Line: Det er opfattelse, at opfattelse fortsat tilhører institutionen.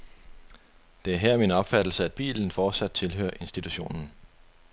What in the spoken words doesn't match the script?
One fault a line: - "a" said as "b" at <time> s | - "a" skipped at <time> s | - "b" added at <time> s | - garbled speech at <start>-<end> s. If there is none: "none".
- "her min" added at 1.2 s
- "opfattelse" said as "bilen" at 2.1 s